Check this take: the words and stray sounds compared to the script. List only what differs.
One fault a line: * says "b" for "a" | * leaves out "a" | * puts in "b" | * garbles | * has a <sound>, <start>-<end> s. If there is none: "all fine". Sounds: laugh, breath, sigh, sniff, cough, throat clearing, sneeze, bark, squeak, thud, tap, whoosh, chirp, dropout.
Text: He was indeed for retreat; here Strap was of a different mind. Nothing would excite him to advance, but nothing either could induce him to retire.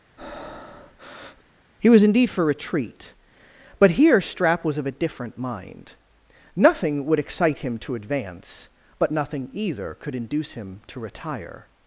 * has a breath, 0.2-1.5 s
* puts in "but"